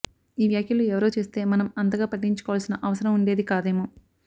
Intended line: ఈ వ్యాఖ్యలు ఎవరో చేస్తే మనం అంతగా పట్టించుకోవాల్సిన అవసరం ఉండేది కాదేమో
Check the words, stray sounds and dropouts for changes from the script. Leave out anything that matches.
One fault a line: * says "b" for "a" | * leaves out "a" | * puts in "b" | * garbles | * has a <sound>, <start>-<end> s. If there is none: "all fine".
all fine